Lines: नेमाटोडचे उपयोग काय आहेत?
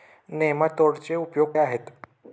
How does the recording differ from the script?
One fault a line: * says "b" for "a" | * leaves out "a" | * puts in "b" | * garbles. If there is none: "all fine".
* leaves out "काय"